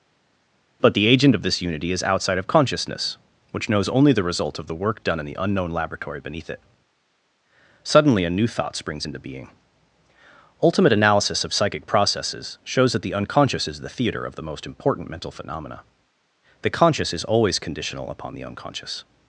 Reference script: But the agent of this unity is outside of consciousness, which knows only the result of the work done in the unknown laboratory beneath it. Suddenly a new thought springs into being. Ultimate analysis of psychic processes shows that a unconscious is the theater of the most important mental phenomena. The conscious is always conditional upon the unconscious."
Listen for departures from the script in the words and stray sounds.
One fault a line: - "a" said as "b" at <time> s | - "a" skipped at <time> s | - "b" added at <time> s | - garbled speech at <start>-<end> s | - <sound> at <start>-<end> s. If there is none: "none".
- "a" said as "the" at 13.0 s